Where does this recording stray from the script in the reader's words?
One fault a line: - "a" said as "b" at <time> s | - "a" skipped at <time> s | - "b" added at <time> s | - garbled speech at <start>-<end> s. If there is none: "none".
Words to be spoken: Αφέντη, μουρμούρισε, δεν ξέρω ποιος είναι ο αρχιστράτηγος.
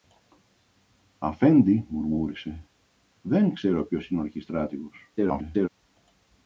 - garbled speech at 5.2-5.7 s